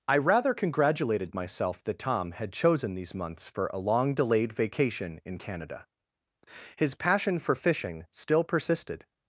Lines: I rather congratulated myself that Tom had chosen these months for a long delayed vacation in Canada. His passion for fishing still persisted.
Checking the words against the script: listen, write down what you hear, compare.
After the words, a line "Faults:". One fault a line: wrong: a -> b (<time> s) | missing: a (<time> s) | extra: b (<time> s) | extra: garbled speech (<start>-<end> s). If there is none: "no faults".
I rather congratulated myself that Tom had chosen these months for a long delayed vacation in Canada. His passion for fishing still persisted.
Faults:
no faults